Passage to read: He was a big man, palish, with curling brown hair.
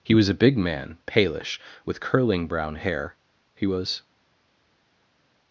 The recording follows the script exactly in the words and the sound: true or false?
false